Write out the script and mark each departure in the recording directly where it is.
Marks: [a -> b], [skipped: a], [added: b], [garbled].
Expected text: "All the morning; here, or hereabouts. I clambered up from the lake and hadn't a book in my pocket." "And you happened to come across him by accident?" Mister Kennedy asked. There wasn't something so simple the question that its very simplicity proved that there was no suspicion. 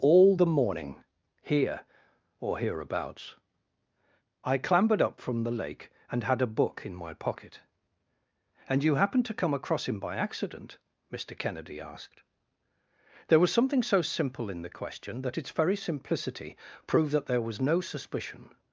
"All the morning; here, or hereabouts. I clambered up from the lake and [hadn't -> had] a book in my pocket." "And you happened to come across him by accident?" Mister Kennedy asked. There [wasn't -> was] something so simple [added: in] the question that its very simplicity proved that there was no suspicion.